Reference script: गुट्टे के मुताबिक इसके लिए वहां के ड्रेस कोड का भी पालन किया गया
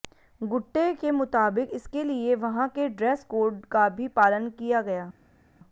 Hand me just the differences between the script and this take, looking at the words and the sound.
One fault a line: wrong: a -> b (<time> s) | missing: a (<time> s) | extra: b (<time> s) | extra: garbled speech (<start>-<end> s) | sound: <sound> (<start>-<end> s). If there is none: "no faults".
no faults